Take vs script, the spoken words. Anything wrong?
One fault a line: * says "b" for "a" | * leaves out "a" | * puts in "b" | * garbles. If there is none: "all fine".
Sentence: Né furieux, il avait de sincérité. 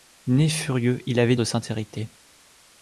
all fine